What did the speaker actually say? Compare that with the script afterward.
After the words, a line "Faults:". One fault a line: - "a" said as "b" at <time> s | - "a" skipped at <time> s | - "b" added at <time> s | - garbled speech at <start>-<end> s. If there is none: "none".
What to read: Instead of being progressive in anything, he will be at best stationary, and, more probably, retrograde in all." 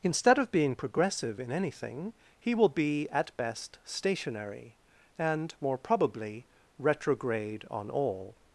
Instead of being progressive in anything, he will be at best stationary, and, more probably, retrograde on all."
Faults:
- "in" said as "on" at 7.7 s